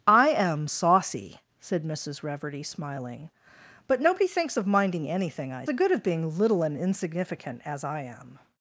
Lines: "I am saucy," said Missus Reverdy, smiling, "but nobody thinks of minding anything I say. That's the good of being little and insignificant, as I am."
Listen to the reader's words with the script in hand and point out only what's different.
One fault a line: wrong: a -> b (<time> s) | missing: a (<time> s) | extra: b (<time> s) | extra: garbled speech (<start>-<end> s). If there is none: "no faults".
missing: say That's (5.6 s)